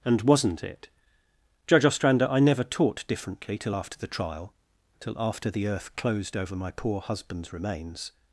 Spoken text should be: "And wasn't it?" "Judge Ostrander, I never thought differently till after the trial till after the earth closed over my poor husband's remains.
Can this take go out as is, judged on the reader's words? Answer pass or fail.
fail